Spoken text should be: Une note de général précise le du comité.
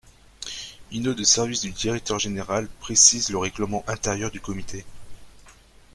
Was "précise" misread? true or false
false